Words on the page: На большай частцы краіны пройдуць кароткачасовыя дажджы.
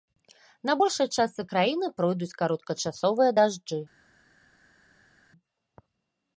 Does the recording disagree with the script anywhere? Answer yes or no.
no